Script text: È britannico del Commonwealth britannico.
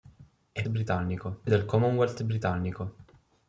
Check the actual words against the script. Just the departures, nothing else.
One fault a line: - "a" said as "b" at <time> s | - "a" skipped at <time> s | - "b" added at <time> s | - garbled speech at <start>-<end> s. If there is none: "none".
none